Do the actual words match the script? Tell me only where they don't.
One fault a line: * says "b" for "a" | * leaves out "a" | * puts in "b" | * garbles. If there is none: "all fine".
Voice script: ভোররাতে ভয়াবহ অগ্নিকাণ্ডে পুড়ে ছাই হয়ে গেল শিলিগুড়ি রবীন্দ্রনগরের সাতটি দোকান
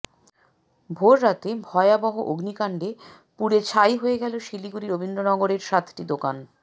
all fine